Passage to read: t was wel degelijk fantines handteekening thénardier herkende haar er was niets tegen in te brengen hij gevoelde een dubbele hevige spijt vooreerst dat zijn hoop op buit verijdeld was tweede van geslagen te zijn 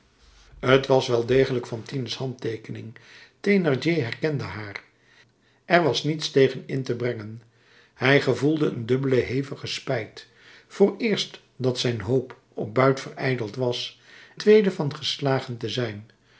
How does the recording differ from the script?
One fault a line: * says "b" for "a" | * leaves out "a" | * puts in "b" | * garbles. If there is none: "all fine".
all fine